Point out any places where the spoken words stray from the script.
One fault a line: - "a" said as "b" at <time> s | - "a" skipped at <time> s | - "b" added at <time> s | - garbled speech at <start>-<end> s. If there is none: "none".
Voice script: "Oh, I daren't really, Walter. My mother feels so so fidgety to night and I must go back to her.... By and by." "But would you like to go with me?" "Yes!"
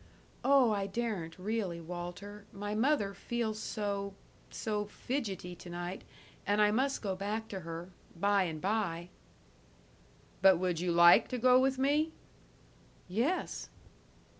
none